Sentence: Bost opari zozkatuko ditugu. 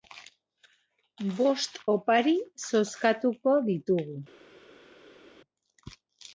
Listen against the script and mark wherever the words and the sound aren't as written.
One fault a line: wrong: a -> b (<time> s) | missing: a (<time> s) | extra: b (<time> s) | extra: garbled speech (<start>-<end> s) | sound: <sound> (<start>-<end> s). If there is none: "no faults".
no faults